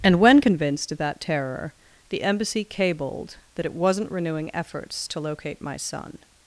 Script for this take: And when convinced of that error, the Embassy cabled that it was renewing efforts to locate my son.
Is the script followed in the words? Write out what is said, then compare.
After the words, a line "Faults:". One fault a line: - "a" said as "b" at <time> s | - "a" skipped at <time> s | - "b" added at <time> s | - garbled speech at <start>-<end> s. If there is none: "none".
And when convinced of that terror, the Embassy cabled that it wasn't renewing efforts to locate my son.
Faults:
- "error" said as "terror" at 1.2 s
- "was" said as "wasn't" at 3.7 s